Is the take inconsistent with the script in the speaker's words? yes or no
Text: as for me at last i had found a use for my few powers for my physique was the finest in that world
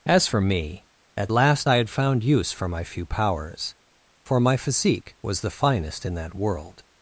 yes